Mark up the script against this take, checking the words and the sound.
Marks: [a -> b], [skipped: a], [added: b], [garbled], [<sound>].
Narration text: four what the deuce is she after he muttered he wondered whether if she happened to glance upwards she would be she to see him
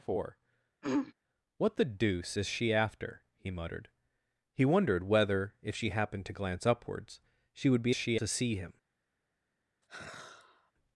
four [throat clearing] what the deuce is she after he muttered he wondered whether if she happened to glance upwards she would be she to see him [sigh]